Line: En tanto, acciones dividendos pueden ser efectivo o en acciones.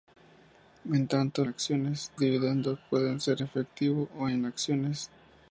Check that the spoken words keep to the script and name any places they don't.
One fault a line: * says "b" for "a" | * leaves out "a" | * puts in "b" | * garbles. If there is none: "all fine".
all fine